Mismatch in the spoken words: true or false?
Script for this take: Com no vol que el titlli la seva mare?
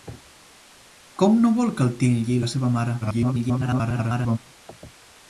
true